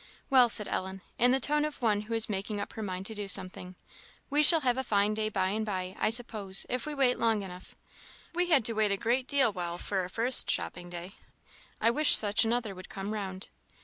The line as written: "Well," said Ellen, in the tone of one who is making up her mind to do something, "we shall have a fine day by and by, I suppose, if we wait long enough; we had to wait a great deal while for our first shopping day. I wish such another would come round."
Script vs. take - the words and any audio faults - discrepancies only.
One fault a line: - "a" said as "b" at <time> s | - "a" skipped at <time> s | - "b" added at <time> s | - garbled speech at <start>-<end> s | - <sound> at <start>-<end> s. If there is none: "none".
none